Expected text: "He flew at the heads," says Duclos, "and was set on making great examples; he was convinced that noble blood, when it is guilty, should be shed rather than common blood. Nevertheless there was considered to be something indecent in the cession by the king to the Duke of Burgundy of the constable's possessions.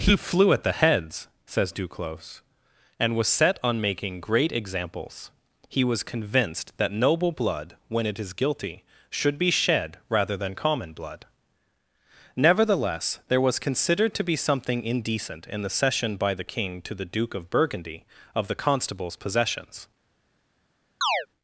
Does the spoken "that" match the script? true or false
true